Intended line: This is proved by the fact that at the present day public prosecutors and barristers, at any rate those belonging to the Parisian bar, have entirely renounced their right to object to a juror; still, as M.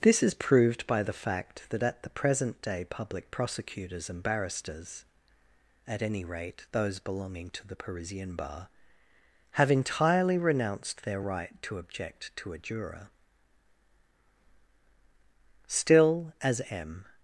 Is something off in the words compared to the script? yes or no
no